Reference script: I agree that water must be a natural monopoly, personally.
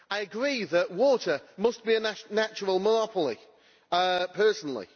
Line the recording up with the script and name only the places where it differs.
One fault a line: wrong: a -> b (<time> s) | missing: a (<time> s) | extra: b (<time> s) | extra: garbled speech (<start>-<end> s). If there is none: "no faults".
no faults